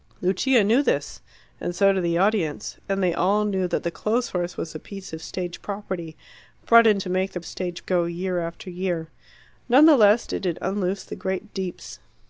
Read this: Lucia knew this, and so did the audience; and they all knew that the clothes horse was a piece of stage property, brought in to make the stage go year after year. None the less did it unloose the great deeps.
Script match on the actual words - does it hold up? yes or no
yes